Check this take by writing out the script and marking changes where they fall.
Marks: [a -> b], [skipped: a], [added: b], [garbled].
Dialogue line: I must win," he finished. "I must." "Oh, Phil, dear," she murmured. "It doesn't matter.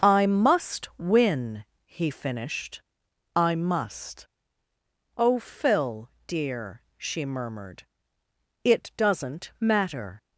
I must win," he finished. "I must." "Oh, Phil, dear," she murmured. "It doesn't matter.